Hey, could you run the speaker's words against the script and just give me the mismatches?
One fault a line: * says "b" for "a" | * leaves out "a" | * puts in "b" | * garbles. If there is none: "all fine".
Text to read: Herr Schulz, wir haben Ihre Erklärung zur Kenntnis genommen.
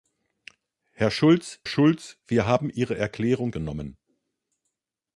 * puts in "Schulz"
* leaves out "zur Kenntnis"